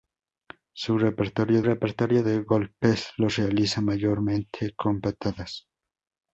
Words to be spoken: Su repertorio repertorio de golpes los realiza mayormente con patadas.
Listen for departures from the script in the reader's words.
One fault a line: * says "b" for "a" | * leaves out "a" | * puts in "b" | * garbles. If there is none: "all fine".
all fine